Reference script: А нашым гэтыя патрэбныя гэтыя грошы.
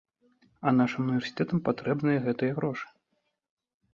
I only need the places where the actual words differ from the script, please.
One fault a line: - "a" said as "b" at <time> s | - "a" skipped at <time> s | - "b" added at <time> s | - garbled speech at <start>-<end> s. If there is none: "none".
- "гэтыя" said as "універсітэтам" at 1.1 s